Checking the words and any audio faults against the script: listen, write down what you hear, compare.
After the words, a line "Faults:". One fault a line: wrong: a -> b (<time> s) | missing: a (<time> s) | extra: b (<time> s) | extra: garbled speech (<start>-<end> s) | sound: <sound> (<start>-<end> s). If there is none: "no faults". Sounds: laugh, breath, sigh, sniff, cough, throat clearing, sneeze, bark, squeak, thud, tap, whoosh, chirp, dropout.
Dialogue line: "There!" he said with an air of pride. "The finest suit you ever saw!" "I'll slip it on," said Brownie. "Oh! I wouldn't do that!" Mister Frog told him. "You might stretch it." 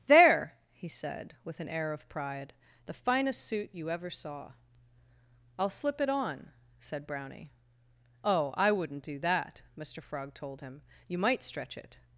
"There!" he said with an air of pride. "The finest suit you ever saw!" "I'll slip it on," said Brownie. "Oh! I wouldn't do that!" Mister Frog told him. "You might stretch it."
Faults:
no faults